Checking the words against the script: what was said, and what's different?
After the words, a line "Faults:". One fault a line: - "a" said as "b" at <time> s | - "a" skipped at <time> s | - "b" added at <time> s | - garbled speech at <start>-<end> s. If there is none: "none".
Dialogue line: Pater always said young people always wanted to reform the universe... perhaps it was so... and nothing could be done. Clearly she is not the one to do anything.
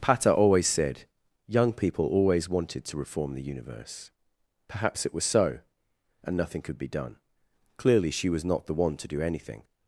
Pater always said young people always wanted to reform the universe... perhaps it was so... and nothing could be done. Clearly she was not the one to do anything.
Faults:
- "is" said as "was" at 8.3 s